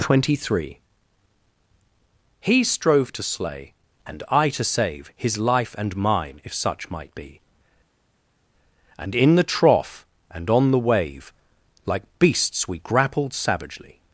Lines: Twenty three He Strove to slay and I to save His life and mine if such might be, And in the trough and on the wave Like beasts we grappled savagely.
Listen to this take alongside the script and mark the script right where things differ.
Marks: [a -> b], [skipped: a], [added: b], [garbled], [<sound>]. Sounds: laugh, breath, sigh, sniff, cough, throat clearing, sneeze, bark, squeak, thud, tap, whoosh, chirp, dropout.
Twenty three He Strove to slay and I to save His life and mine if such might be, And in the trough and on the wave Like beasts we grappled savagely.